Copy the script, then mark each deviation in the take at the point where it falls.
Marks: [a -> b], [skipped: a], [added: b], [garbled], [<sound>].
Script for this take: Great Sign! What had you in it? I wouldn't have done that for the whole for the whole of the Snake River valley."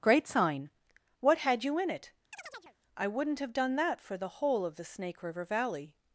Great Sign! What had you in it? [chirp] I wouldn't have done that for the whole [skipped: for the whole] of the Snake River valley."